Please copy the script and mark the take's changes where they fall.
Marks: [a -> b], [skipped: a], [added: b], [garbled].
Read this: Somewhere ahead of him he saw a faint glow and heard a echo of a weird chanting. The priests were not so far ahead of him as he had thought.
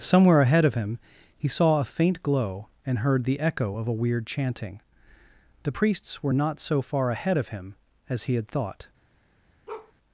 Somewhere ahead of him he saw a faint glow and heard [a -> the] echo of a weird chanting. The priests were not so far ahead of him as he had thought.